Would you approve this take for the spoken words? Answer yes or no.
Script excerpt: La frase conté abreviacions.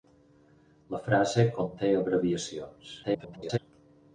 no